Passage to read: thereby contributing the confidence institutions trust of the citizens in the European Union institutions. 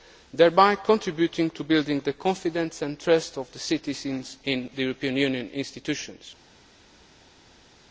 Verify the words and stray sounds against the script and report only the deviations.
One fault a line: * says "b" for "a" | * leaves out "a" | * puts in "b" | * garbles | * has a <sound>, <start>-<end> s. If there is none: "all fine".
* puts in "to building"
* says "and" for "institutions"